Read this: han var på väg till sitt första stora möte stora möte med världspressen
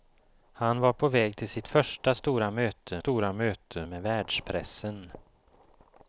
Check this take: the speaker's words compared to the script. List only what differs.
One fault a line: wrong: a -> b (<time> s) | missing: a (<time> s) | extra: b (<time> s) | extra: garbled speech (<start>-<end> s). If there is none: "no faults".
no faults